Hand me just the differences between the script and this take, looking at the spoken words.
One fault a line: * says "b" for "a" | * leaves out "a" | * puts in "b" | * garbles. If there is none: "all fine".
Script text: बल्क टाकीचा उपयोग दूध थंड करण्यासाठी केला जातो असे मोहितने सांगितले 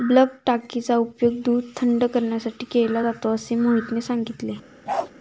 all fine